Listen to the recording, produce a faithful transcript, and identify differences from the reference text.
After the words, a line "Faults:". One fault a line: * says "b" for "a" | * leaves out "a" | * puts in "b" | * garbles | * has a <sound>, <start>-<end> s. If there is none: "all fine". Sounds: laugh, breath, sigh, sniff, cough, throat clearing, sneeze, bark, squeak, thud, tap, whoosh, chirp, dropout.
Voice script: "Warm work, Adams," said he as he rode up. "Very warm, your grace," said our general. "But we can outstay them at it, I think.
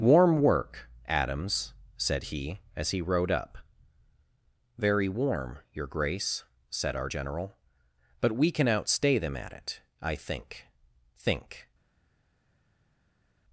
"Warm work, Adams," said he as he rode up. "Very warm, your grace," said our general. "But we can outstay them at it, I think think.
Faults:
* puts in "think"